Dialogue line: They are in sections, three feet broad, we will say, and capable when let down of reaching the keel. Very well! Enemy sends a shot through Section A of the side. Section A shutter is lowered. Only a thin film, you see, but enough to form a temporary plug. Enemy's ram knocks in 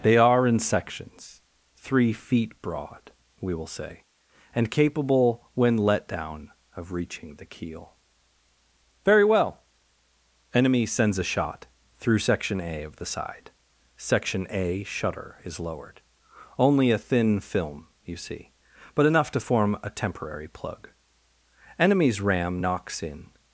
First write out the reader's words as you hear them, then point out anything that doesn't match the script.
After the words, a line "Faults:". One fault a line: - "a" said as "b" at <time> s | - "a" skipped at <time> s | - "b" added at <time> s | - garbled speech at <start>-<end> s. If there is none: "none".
They are in sections, three feet broad, we will say, and capable when let down of reaching the keel. Very well! Enemy sends a shot through Section A of the side. Section A shutter is lowered. Only a thin film, you see, but enough to form a temporary plug. Enemy's ram knocks in
Faults:
none